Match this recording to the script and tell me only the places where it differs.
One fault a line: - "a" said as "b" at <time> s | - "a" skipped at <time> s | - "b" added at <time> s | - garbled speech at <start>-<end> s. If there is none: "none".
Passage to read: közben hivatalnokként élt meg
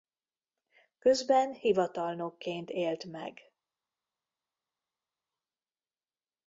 none